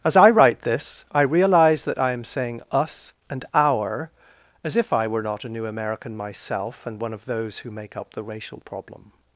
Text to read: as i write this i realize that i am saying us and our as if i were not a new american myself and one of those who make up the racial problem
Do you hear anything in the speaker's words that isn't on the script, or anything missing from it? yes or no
no